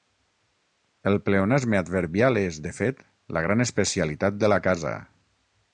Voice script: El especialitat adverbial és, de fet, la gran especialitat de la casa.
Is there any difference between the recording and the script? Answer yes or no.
yes